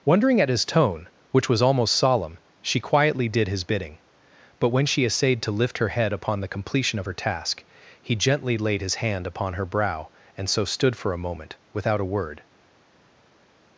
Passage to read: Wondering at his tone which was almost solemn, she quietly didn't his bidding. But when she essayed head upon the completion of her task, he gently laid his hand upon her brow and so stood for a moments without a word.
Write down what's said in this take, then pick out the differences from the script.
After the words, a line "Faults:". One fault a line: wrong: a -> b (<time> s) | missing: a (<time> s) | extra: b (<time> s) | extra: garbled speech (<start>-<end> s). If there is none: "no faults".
Wondering at his tone which was almost solemn, she quietly did his bidding. But when she essayed to lift her head upon the completion of her task, he gently laid his hand upon her brow and so stood for a moment without a word.
Faults:
wrong: didn't -> did (3.3 s)
extra: to lift her (5.4 s)
wrong: moments -> moment (11.2 s)